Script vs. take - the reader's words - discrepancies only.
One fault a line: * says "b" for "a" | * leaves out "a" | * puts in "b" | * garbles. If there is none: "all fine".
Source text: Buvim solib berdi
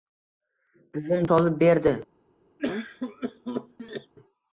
all fine